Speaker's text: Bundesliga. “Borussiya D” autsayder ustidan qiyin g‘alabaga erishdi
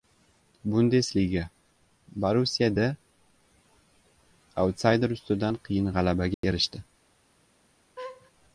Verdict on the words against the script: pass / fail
pass